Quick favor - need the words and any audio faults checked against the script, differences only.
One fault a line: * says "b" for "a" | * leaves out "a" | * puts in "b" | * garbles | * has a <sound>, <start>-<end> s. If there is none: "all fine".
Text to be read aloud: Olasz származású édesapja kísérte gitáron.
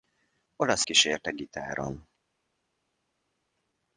* leaves out "származású édesapja"